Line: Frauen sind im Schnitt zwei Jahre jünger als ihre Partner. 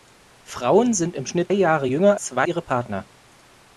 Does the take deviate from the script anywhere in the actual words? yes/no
yes